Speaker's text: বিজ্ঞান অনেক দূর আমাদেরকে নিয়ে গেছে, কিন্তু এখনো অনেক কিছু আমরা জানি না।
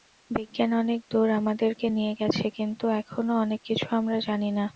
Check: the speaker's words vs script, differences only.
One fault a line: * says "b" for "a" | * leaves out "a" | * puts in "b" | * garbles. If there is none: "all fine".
all fine